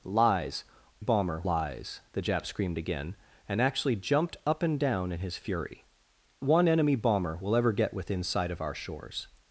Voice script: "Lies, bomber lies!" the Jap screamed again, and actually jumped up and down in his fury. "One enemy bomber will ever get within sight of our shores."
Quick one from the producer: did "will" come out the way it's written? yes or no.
yes